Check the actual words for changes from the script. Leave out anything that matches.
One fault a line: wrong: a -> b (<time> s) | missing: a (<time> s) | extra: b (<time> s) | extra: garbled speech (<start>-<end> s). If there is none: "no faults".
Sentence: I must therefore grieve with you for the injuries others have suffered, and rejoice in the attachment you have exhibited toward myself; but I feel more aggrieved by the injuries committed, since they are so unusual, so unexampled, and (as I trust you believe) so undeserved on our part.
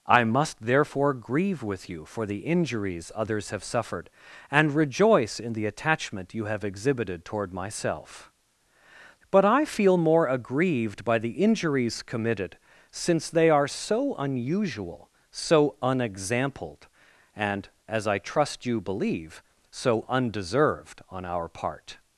no faults